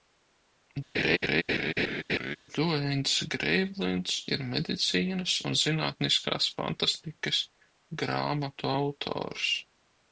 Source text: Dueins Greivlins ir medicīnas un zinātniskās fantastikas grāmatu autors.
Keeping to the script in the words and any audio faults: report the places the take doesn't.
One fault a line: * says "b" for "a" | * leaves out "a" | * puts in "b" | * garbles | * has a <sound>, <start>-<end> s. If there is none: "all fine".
* has a laugh, 0.9-2.4 s